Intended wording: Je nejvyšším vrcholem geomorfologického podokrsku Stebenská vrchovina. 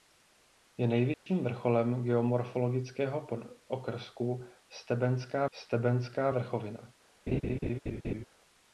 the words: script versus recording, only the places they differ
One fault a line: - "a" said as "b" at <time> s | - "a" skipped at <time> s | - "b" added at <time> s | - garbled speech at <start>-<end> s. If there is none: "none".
- "Stebenská" added at 5.5 s